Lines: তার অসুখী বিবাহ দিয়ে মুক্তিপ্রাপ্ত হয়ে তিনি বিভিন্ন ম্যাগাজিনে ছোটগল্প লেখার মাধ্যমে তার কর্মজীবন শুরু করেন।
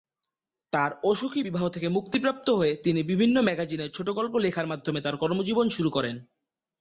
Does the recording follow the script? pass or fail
fail